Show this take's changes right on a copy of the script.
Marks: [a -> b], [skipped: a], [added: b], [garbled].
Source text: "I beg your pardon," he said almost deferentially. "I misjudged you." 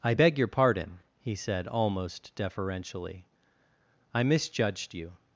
"I beg your pardon," he said almost deferentially. "I misjudged you."